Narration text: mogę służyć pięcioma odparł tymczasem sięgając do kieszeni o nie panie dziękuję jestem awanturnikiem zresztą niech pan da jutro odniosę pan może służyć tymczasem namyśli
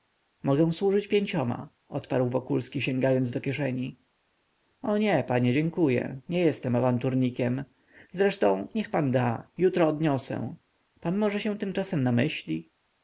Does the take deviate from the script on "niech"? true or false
false